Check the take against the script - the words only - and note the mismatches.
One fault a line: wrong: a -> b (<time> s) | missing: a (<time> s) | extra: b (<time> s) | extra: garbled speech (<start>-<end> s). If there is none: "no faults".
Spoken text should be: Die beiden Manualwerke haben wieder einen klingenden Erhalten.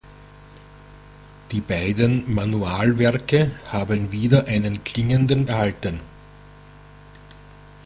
no faults